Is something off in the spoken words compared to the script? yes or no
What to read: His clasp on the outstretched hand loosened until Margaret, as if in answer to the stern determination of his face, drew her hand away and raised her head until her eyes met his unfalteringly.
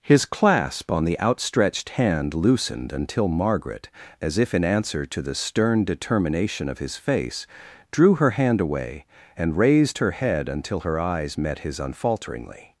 no